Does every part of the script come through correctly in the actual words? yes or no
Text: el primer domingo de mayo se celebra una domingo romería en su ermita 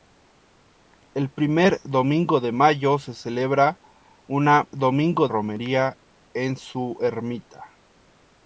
yes